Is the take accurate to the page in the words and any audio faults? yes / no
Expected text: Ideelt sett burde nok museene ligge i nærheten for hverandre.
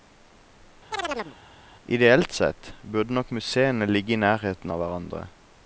no